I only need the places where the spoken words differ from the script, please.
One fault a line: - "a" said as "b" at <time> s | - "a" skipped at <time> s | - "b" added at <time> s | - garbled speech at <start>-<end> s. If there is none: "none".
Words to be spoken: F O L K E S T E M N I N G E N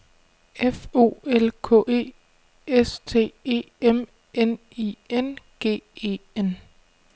none